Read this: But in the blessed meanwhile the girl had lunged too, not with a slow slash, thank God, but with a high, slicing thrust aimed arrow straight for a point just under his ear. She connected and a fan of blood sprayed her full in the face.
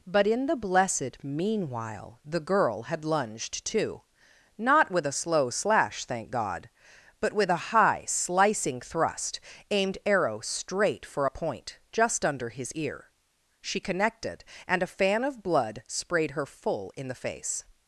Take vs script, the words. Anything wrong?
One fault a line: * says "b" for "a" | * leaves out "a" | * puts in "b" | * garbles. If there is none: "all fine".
all fine